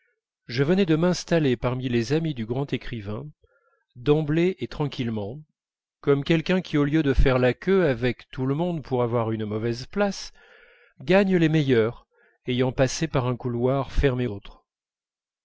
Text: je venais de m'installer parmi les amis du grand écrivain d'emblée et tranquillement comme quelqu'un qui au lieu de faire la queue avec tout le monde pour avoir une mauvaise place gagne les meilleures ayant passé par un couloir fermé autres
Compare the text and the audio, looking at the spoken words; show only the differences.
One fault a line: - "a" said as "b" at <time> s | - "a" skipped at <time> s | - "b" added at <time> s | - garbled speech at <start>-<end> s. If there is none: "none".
none